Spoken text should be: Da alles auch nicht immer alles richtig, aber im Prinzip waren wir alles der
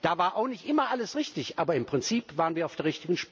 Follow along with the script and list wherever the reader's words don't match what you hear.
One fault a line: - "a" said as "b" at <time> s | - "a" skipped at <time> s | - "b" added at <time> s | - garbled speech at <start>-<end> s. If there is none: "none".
- "alles" said as "war" at 0.2 s
- "alles" said as "auf" at 2.6 s